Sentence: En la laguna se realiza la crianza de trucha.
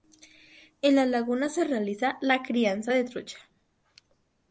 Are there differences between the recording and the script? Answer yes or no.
no